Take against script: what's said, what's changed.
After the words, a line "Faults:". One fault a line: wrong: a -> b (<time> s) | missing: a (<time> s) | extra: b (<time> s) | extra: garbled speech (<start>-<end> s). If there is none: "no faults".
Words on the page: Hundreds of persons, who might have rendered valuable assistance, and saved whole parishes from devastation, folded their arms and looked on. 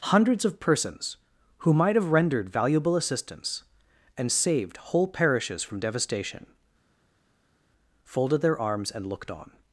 Hundreds of persons, who might have rendered valuable assistance, and saved whole parishes from devastation, folded their arms and looked on.
Faults:
no faults